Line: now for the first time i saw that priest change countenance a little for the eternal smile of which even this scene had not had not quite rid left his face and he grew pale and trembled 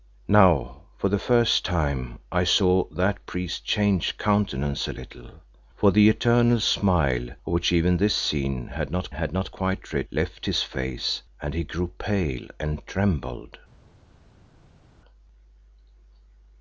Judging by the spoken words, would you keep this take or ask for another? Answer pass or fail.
pass